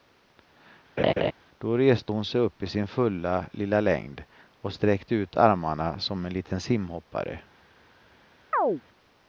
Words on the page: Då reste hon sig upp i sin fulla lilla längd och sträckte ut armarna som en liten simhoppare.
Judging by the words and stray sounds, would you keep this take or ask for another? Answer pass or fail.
fail